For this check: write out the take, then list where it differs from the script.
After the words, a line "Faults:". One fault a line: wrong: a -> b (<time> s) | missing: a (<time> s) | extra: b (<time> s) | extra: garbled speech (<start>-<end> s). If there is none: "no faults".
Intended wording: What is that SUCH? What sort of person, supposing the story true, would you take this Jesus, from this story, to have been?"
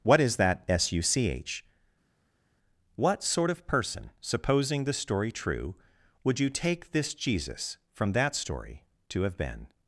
What is that SUCH? What sort of person, supposing the story true, would you take this Jesus, from that story, to have been?"
Faults:
wrong: this -> that (8.1 s)